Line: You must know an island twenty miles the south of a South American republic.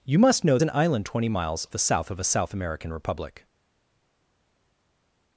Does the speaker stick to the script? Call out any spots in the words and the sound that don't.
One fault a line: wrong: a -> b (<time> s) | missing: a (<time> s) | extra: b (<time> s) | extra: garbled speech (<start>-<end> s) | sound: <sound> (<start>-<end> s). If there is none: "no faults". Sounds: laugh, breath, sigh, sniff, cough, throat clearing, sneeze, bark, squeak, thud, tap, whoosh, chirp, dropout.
no faults